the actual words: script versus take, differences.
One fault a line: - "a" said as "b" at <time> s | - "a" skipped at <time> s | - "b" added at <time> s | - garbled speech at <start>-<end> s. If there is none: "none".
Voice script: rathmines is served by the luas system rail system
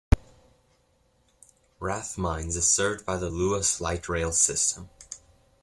- "system" said as "light" at 3.8 s